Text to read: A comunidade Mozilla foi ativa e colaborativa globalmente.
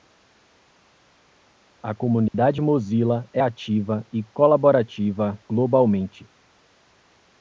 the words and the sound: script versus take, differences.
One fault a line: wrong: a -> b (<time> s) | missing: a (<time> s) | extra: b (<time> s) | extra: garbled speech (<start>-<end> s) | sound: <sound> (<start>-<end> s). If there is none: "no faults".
sound: dropout (2.3-2.3 s)
wrong: foi -> é (3.3 s)